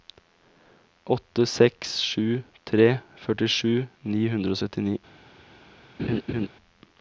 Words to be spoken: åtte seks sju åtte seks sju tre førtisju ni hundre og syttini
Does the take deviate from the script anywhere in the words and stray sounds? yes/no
yes